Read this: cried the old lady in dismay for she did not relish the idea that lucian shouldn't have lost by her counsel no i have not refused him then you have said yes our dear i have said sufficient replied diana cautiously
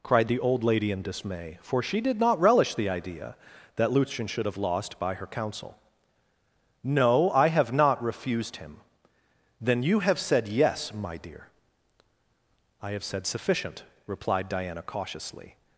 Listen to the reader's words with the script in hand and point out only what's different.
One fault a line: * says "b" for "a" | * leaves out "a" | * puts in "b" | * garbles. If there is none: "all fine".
* says "should" for "shouldn't"
* says "my" for "our"